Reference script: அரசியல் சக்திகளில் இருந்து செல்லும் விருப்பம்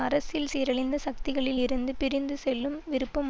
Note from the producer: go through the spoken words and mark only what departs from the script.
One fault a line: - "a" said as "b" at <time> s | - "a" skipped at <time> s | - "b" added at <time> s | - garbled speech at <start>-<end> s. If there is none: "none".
- "சீரழிந்த" added at 0.5 s
- "பிரிந்து" added at 2.0 s